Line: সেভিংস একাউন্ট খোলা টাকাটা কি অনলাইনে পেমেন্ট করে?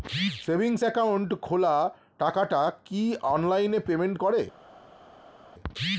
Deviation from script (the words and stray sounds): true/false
false